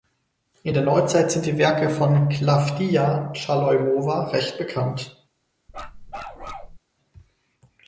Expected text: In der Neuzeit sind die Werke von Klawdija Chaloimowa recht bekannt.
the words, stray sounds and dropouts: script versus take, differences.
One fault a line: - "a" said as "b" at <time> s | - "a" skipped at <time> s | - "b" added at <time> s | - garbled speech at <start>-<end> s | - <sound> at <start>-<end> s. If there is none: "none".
- bark at 5.7-6.8 s